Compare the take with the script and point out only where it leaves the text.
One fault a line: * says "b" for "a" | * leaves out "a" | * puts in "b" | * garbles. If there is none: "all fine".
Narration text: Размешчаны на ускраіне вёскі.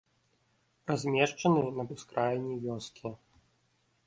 all fine